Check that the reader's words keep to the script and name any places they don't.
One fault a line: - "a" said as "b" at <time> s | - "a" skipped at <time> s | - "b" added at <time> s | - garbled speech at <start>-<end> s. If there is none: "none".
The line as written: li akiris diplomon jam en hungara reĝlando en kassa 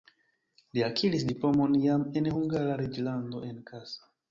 none